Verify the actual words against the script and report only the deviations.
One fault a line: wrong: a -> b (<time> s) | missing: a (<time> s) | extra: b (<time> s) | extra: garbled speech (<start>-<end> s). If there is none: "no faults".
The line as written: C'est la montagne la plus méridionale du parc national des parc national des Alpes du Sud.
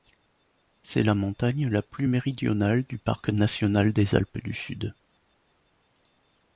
missing: parc national des (4.1 s)